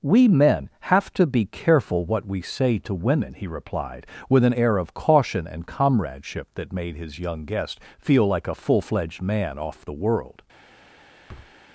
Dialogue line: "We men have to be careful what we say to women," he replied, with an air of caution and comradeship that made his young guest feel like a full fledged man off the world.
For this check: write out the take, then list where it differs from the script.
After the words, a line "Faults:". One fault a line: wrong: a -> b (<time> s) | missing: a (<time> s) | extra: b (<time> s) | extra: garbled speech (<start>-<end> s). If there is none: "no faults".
"We men have to be careful what we say to women," he replied, with an air of caution and comradeship that made his young guest feel like a full fledged man off the world.
Faults:
no faults